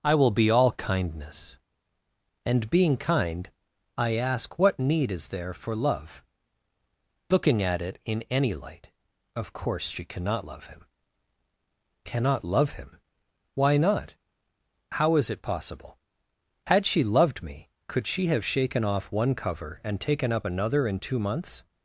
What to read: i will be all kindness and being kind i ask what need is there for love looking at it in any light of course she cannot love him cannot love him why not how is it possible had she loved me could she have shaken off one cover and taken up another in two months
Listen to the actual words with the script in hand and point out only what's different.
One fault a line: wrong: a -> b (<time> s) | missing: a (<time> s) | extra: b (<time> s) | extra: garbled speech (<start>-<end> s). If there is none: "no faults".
no faults